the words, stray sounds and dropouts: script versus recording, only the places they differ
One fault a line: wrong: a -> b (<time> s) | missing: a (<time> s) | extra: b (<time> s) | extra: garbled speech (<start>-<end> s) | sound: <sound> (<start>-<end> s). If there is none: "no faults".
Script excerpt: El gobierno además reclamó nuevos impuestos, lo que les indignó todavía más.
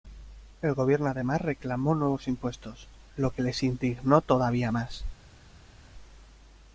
no faults